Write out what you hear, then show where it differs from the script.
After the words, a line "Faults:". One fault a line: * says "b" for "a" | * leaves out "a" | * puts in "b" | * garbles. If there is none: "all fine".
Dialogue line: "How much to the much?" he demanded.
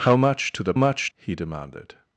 "How much to the much?" he demanded.
Faults:
all fine